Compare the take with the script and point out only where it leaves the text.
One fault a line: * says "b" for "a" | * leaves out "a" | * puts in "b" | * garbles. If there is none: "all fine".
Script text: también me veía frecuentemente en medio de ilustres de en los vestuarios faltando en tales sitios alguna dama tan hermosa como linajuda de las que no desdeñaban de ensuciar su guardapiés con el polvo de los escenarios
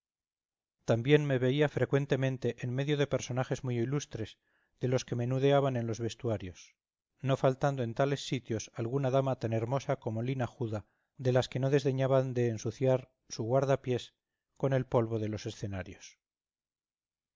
* puts in "personajes muy"
* puts in "los que menudeaban"
* puts in "no"